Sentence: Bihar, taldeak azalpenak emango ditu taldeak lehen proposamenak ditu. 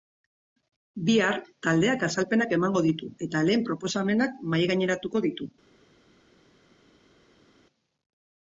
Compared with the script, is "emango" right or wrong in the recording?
right